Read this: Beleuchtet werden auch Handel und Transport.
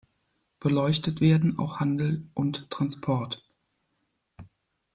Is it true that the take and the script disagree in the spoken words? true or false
false